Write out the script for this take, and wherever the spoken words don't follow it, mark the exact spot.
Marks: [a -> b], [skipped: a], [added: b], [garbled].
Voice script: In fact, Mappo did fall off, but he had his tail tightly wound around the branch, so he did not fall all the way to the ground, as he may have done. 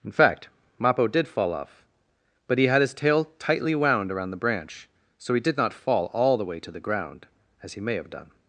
In fact, Mappo did fall off, but he had his tail tightly wound around the branch, so he did not fall all the way to the ground, as he may have done.